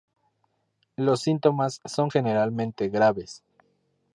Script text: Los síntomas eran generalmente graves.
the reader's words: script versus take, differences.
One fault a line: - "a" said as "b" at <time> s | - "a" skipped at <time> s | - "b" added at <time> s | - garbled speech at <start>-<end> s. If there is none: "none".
- "eran" said as "son" at 1.8 s